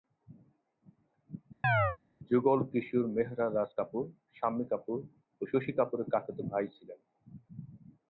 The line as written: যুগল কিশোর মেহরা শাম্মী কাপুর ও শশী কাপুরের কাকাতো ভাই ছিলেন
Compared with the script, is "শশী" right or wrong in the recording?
right